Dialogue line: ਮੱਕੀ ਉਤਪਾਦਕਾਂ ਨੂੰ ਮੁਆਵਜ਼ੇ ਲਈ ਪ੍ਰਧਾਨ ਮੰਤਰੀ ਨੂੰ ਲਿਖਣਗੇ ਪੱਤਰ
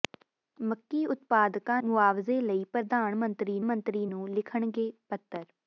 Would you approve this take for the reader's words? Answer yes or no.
no